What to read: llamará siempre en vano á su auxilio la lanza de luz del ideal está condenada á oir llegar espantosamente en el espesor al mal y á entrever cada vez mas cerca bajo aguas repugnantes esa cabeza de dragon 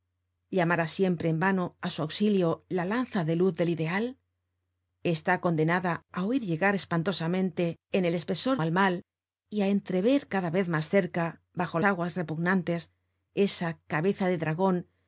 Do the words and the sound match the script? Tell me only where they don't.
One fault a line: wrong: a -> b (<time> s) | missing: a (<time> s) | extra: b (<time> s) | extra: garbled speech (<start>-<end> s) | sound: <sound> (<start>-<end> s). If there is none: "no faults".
no faults